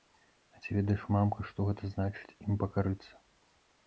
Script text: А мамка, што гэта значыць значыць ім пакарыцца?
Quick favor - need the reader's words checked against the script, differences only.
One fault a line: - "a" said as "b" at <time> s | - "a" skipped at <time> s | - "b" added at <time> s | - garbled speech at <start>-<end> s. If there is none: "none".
- "ці ведаеш" added at 0.6 s
- "значыць" skipped at 2.4 s